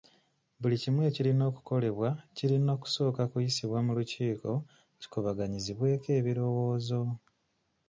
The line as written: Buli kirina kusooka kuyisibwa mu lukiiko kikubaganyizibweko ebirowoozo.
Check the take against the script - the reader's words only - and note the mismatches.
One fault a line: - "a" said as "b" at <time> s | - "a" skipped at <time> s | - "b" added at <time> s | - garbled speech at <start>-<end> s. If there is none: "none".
- "kimu ekirina okukolebwa" added at 0.8 s